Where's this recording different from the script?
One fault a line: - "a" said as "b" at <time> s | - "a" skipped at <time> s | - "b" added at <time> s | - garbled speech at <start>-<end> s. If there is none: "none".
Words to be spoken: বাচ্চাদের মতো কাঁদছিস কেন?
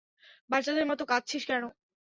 none